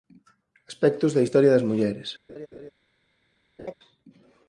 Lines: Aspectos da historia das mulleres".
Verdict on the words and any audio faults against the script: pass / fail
fail